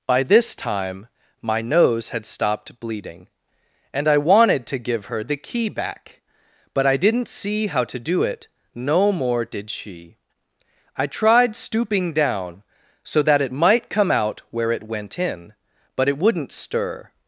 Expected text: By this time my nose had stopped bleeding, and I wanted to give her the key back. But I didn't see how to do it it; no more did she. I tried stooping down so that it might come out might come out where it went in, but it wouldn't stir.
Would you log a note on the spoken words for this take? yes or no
yes